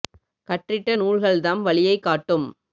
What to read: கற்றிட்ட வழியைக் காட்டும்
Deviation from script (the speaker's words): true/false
true